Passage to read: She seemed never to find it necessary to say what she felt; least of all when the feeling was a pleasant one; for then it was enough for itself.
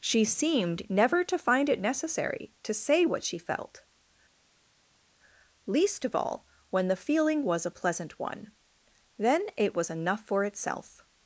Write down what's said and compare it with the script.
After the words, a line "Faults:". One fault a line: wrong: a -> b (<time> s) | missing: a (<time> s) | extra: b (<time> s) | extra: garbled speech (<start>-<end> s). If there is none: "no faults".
She seemed never to find it necessary to say what she felt; least of all when the feeling was a pleasant one; then it was enough for itself.
Faults:
missing: for (8.5 s)